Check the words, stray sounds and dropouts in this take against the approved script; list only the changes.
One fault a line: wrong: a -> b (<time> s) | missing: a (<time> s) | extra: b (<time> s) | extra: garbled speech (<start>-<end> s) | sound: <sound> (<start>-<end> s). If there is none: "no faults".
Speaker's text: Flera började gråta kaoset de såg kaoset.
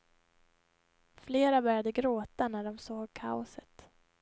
wrong: kaoset -> när (2.5 s)